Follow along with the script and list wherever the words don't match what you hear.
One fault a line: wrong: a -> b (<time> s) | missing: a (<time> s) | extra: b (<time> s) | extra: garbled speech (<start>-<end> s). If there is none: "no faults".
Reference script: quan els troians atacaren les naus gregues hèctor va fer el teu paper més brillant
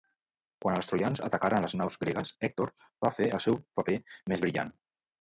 wrong: teu -> seu (3.5 s)